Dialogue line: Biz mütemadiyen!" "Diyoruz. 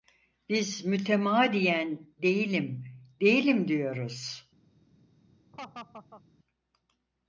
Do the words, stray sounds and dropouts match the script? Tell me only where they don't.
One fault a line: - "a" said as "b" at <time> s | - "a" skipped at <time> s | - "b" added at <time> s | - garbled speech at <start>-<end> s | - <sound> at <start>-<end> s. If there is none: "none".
- "Değilim değilim" added at 2.2 s
- laugh at 5.5-6.2 s